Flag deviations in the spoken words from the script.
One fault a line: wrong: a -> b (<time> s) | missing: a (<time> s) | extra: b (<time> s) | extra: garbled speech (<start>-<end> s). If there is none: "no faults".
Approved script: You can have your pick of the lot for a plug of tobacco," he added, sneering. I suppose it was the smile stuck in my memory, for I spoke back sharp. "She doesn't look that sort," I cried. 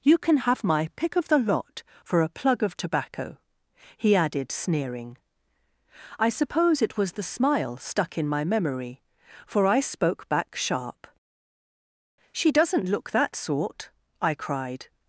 wrong: your -> my (0.6 s)